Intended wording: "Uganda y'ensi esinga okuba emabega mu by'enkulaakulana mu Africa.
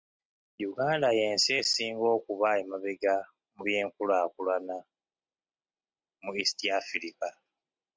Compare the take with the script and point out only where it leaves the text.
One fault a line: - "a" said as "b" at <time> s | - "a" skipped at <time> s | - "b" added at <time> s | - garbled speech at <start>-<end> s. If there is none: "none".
- "East" added at 6.4 s